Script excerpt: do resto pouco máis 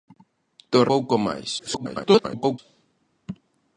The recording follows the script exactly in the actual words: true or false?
false